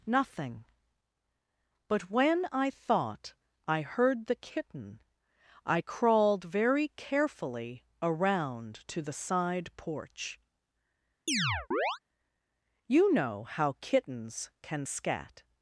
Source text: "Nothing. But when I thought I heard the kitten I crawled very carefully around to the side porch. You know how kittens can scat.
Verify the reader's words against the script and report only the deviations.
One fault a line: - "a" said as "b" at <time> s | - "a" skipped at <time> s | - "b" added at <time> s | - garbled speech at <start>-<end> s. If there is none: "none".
none